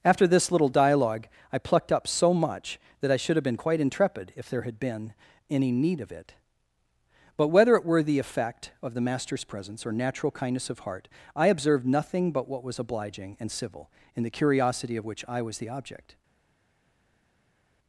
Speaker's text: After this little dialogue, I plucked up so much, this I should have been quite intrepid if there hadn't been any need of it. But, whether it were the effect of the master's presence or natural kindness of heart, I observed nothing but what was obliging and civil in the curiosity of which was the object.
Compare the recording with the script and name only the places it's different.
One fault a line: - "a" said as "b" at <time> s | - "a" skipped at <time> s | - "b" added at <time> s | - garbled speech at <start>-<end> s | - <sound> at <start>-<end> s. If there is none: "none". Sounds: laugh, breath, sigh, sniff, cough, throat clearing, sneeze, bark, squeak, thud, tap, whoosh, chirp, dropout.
- "this" said as "that" at 3.0 s
- "hadn't" said as "had" at 4.6 s
- "I" added at 15.3 s